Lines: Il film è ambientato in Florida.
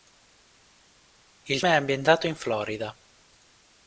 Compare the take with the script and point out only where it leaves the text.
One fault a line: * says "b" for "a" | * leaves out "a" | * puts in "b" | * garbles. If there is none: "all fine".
* leaves out "film"